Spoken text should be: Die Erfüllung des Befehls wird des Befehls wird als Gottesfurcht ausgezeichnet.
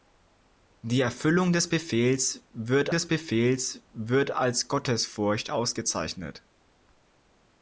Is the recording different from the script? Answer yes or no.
no